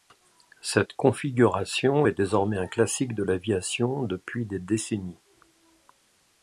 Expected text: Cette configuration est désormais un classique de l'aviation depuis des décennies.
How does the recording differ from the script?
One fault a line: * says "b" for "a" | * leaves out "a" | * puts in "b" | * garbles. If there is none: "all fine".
all fine